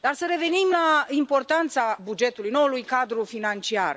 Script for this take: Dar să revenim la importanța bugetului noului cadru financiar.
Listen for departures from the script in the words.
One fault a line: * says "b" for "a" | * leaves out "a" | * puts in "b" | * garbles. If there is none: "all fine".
all fine